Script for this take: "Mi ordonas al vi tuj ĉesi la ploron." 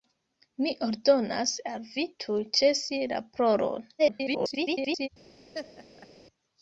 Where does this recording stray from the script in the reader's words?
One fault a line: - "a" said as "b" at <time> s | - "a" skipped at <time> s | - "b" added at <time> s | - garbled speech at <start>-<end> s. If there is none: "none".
- garbled speech at 4.0-5.1 s